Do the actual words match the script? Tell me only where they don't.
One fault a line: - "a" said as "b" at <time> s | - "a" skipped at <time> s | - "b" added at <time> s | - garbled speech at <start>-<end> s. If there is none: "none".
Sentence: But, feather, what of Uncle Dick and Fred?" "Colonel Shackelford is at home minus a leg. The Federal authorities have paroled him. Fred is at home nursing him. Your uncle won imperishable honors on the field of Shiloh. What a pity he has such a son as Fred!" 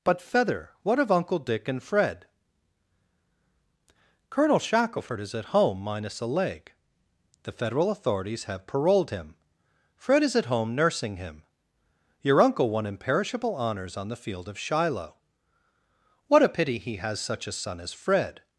none